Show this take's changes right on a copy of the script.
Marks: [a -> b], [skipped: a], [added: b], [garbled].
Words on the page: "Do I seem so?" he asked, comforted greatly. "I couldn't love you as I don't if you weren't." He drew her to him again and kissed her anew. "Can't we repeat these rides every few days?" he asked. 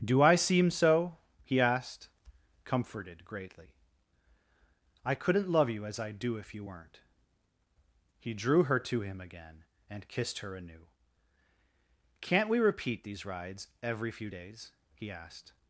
"Do I seem so?" he asked, comforted greatly. "I couldn't love you as I [don't -> do] if you weren't." He drew her to him again and kissed her anew. "Can't we repeat these rides every few days?" he asked.